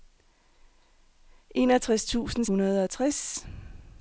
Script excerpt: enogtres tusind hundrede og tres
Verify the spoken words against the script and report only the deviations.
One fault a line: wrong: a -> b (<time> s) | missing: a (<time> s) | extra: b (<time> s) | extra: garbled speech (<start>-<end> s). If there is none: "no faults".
no faults